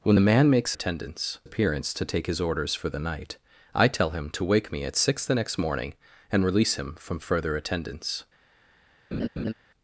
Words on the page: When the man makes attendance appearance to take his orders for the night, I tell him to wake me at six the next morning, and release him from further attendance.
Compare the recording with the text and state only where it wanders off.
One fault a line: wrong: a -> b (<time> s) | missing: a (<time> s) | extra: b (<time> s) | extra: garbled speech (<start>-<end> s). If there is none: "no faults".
no faults